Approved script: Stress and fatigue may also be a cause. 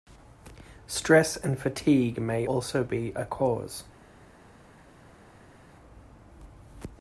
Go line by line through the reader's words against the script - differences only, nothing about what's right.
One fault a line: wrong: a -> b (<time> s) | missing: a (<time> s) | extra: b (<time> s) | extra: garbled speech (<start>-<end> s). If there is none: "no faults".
no faults